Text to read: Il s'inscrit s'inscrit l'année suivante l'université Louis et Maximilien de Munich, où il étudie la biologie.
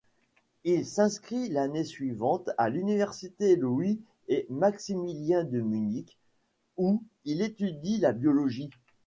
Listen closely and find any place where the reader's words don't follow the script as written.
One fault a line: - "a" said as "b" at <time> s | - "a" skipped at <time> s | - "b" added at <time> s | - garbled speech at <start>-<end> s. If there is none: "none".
- "s'inscrit" skipped at 1.5 s
- "à" added at 2.6 s